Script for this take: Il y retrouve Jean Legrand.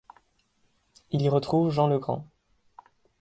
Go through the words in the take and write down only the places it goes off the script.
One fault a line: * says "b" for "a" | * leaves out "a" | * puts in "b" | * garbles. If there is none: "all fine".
all fine